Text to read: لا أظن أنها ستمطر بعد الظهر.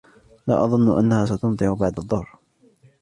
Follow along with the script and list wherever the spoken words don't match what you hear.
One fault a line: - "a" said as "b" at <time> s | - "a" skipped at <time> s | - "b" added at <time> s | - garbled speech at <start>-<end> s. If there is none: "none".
none